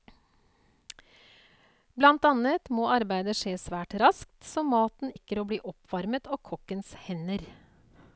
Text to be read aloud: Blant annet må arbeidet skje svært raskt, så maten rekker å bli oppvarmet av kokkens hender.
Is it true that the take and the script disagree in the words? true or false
false